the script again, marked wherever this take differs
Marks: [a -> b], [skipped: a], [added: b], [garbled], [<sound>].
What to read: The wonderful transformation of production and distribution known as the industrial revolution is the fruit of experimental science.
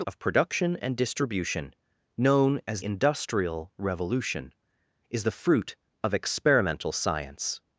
The [skipped: wonderful transformation] of production and distribution known as [skipped: the] industrial revolution is the fruit of experimental science.